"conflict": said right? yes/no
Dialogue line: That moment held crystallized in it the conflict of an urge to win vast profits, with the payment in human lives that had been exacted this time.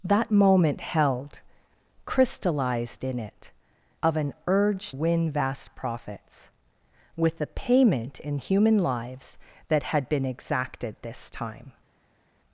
no